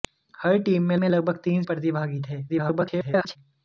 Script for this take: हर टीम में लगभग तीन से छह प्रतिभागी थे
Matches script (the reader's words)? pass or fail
fail